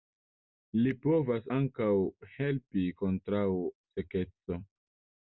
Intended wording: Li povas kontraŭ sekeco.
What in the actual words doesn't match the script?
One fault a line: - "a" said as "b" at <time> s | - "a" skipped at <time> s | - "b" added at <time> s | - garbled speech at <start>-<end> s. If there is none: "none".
- "ankaŭ helpi" added at 1.5 s